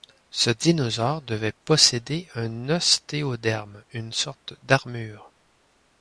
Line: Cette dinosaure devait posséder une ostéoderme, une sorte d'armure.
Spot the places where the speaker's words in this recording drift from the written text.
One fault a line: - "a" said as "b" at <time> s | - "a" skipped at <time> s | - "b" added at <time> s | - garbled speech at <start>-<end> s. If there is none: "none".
- "Cette" said as "Ce" at 0.3 s
- "une" said as "un" at 2.3 s